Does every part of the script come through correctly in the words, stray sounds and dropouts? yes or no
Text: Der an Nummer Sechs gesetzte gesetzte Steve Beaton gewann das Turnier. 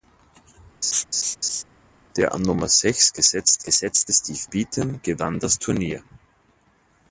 no